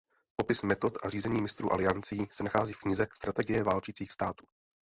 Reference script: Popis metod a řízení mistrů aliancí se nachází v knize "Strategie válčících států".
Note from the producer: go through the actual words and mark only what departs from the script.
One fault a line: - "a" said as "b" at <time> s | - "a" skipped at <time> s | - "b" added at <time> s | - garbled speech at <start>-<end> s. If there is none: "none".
none